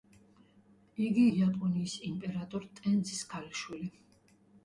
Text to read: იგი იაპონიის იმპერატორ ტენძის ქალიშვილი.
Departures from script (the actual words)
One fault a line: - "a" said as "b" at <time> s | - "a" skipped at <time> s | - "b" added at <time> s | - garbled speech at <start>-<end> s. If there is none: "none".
none